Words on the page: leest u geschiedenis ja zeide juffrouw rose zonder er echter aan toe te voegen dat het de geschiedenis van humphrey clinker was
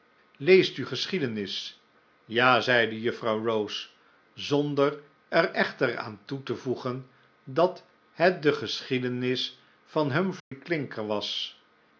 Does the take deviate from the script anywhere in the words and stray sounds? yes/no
yes